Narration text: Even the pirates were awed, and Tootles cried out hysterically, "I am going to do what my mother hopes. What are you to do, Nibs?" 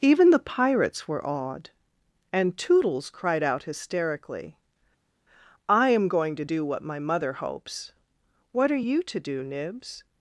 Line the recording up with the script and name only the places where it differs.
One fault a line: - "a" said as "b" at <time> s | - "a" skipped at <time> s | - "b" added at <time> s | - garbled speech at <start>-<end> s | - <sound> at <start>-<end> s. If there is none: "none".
none